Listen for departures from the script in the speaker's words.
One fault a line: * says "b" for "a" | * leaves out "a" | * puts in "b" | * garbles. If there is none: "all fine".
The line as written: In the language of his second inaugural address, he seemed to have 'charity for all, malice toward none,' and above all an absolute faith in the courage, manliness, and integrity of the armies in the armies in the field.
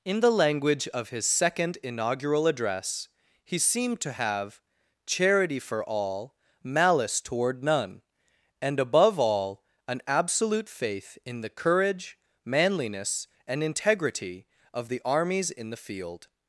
* leaves out "armies in the"